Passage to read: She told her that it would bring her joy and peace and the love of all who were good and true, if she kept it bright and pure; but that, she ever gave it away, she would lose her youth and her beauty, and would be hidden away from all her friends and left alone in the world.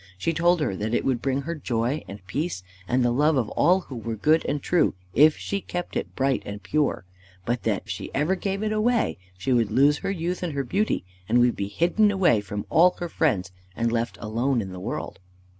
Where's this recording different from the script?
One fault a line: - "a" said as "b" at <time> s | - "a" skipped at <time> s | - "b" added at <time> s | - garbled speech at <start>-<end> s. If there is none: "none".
none